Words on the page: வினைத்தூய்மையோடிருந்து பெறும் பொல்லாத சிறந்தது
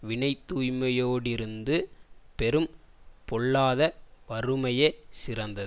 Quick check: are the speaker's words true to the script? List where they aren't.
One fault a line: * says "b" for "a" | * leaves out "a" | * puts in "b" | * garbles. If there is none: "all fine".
* puts in "வறுமையே"